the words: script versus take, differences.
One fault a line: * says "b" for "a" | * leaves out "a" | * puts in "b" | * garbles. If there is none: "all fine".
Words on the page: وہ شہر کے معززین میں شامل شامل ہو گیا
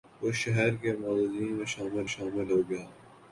all fine